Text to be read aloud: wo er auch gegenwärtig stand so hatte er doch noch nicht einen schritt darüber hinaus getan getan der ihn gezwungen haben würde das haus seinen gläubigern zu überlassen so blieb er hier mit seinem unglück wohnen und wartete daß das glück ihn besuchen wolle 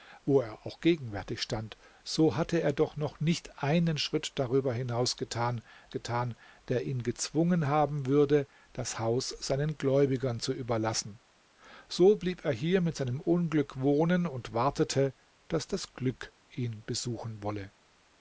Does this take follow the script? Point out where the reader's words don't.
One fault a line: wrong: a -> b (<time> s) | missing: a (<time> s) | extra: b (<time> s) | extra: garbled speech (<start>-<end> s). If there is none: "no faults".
no faults